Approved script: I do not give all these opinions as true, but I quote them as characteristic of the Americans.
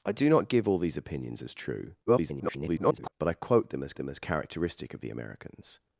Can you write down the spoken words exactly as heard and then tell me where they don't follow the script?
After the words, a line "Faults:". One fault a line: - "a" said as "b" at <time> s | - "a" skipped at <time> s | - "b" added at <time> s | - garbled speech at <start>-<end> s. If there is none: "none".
I do not give all these opinions as true, [garbled] but I quote them as them as characteristic of the Americans.
Faults:
- garbled speech at 2.1-3.1 s
- "them as" added at 4.0 s